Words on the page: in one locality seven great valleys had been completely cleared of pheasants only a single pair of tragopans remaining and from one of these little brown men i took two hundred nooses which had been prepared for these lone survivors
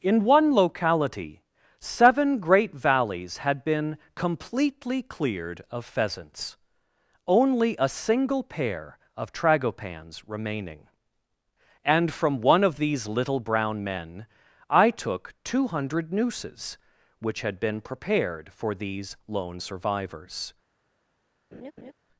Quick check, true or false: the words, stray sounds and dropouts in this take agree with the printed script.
false